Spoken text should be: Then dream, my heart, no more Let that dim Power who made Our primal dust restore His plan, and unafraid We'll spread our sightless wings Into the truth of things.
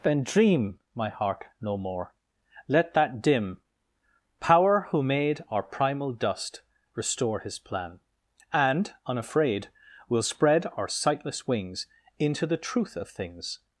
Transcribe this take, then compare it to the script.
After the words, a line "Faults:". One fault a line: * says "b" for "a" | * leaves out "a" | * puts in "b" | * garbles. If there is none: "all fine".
Then dream, my heart, no more Let that dim Power who made Our primal dust restore His plan, and unafraid We'll spread our sightless wings Into the truth of things.
Faults:
all fine